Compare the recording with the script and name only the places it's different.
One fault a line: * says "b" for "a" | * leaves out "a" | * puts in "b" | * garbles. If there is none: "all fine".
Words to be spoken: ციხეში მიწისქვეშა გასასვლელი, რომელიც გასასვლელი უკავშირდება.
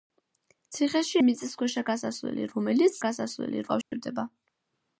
all fine